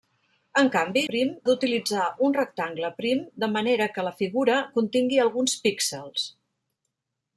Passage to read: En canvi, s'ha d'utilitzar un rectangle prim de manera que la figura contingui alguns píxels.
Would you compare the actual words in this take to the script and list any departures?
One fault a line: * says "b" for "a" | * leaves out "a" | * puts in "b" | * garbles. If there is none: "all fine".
* says "prim" for "s'ha"